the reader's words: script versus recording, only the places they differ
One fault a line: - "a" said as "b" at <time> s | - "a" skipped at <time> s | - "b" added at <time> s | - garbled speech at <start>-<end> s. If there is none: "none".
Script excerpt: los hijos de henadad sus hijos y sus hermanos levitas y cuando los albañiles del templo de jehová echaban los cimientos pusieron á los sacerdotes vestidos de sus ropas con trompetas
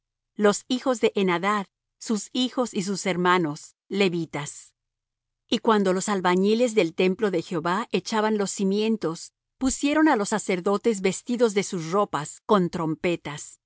none